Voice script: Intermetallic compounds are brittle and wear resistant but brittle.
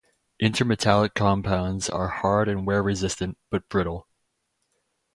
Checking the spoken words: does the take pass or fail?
fail